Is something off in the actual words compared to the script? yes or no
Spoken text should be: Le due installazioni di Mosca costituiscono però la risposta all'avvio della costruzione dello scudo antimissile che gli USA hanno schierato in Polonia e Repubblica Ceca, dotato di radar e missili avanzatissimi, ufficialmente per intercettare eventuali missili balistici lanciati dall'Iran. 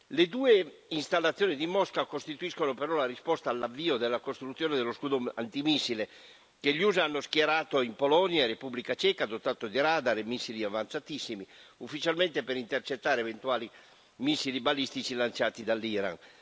no